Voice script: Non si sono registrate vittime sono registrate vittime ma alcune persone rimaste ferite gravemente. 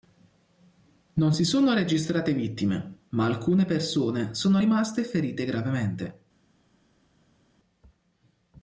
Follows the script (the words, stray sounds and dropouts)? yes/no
no